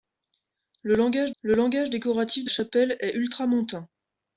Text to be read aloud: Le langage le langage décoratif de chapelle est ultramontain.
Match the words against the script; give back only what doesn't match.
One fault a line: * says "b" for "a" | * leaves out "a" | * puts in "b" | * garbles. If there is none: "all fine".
all fine